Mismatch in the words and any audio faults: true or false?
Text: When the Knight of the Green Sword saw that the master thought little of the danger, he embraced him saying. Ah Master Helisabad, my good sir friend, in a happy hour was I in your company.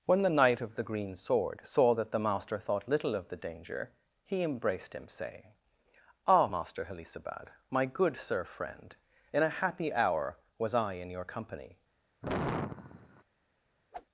true